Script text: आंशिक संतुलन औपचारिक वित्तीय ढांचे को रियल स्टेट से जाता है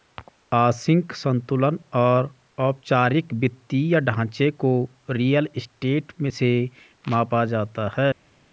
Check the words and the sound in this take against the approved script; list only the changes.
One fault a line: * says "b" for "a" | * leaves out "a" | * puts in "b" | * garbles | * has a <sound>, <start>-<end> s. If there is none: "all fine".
* puts in "और"
* puts in "मापा"